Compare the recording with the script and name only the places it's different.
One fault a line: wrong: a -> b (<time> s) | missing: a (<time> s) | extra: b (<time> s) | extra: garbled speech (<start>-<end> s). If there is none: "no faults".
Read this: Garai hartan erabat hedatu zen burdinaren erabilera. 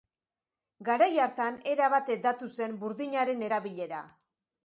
no faults